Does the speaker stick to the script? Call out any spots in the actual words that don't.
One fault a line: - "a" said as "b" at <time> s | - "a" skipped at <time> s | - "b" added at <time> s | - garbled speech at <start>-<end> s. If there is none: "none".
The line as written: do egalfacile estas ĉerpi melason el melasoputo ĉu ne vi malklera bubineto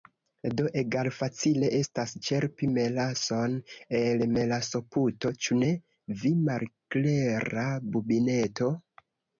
none